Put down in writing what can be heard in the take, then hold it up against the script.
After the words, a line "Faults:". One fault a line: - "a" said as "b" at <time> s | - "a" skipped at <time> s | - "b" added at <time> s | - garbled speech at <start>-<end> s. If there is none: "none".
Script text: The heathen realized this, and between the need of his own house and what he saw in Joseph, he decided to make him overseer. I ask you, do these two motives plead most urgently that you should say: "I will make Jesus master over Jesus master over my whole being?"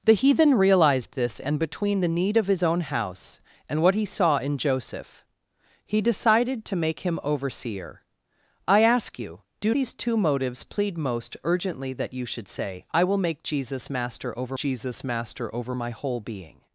The heathen realized this, and between the need of his own house and what he saw in Joseph, he decided to make him overseer. I ask you, do these two motives plead most urgently that you should say: "I will make Jesus master over Jesus master over my whole being?"
Faults:
none